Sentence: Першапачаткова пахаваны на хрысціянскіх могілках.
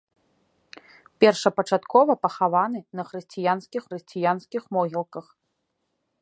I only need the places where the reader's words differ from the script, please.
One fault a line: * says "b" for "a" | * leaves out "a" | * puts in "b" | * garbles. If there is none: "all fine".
* puts in "хрысціянскіх"